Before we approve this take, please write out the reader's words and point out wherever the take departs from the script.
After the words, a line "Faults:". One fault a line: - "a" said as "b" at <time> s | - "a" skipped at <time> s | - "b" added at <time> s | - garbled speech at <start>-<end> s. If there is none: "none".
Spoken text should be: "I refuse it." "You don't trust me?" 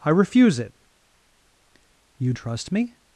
"I refuse it." "You trust me?"
Faults:
- "don't" skipped at 2.3 s